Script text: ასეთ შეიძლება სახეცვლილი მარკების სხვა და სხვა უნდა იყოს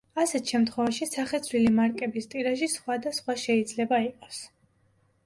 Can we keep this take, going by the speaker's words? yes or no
no